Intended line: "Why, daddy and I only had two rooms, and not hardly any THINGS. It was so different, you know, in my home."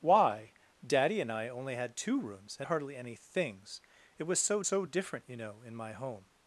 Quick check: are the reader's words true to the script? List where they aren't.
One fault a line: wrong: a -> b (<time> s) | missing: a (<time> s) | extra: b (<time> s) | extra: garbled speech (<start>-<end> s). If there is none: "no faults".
missing: not (2.7 s)
extra: so (4.6 s)